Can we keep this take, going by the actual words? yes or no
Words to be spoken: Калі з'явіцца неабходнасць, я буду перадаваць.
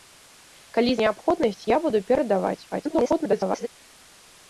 no